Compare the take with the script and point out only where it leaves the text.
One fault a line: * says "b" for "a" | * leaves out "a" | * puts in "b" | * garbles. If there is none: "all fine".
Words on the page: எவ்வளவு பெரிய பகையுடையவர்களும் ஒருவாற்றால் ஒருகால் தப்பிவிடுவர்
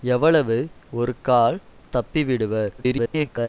* leaves out "பெரிய பகையுடையவர்களும் ஒருவாற்றால்"
* garbles